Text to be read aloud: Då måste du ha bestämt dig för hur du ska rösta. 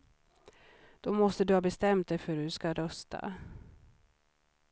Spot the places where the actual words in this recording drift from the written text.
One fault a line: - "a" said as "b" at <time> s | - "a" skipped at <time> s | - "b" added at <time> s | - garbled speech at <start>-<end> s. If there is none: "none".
none